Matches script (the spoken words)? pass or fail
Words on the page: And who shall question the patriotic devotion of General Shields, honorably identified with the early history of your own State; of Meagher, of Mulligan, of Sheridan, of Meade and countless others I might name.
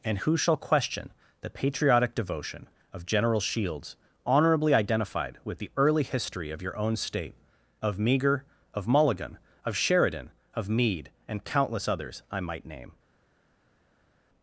pass